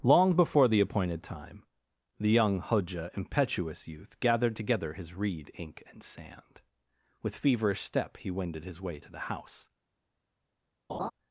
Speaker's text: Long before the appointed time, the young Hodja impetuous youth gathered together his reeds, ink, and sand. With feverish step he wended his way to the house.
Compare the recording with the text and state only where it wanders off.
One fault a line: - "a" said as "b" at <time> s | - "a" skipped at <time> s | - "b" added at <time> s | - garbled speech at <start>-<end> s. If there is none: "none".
- "reeds" said as "reed" at 5.1 s